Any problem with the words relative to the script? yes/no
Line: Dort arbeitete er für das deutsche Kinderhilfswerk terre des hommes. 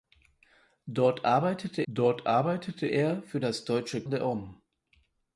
yes